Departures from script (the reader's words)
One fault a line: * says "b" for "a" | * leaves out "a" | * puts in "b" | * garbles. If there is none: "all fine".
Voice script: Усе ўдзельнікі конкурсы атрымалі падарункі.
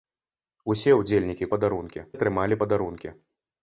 * says "падарункі" for "конкурсы"